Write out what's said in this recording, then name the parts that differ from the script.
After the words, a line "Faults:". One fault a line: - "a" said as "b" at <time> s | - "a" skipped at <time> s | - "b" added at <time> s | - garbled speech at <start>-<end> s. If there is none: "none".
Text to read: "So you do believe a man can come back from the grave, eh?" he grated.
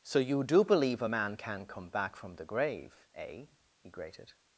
"So you do believe a man can come back from the grave, eh?" he grated.
Faults:
none